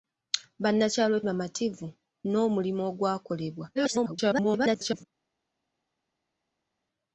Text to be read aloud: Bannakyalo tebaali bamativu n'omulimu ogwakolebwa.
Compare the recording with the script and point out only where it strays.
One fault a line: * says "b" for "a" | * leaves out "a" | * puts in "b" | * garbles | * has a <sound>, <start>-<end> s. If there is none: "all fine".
* leaves out "tebaali"
* garbles